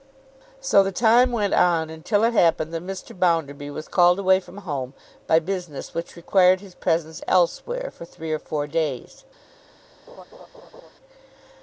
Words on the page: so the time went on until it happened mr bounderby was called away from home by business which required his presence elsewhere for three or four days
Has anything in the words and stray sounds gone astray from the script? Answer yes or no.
yes